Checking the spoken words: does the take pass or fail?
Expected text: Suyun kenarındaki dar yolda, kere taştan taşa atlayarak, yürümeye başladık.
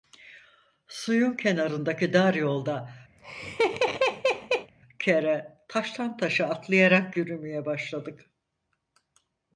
pass